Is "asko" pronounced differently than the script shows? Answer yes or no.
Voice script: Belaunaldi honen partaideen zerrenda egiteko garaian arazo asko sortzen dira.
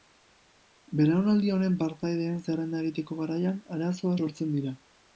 yes